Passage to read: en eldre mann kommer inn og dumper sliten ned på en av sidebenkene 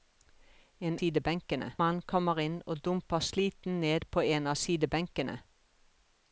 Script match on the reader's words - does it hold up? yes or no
no